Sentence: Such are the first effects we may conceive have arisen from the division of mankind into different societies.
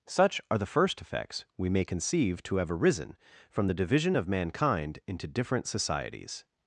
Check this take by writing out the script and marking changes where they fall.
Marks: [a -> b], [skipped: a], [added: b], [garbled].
Such are the first effects we may conceive [added: to] have arisen from the division of mankind into different societies.